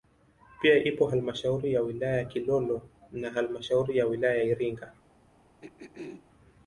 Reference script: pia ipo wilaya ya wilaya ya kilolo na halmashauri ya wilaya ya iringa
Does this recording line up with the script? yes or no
no